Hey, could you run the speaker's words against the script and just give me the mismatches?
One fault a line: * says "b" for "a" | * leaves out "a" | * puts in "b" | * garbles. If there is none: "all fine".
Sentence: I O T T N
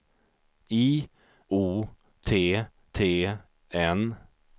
all fine